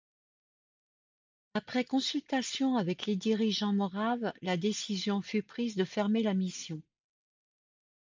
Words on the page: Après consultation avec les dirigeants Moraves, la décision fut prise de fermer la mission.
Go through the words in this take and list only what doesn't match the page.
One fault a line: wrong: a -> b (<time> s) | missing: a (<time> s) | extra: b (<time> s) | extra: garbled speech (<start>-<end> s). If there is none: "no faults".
no faults